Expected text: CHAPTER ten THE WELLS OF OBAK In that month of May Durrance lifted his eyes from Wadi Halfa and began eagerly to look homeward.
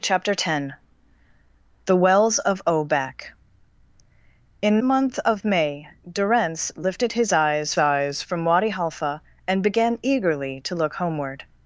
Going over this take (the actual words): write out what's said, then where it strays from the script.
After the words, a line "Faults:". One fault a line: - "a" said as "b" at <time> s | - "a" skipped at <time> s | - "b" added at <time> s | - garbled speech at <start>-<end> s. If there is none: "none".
CHAPTER ten THE WELLS OF OBAK In month of May Durrance lifted his eyes eyes from Wadi Halfa and began eagerly to look homeward.
Faults:
- "that" skipped at 4.8 s
- "eyes" added at 7.8 s